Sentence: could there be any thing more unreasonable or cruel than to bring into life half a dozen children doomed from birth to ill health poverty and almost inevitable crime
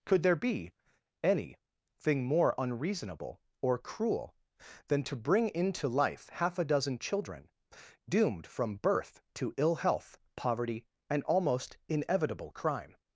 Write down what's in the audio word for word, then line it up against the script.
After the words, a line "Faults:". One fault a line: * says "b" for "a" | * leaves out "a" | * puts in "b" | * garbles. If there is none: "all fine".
could there be any thing more unreasonable or cruel than to bring into life half a dozen children doomed from birth to ill health poverty and almost inevitable crime
Faults:
all fine